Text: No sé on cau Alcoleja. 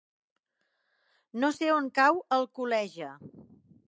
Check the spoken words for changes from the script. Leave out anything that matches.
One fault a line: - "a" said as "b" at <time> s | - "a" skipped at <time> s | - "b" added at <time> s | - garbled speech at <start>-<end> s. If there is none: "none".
none